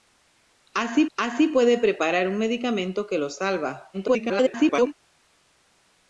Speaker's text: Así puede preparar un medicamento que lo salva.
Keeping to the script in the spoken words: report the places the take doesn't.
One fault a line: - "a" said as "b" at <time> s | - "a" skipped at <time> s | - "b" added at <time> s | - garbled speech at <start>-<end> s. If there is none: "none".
- "así" added at 1.2 s
- garbled speech at 3.9-4.9 s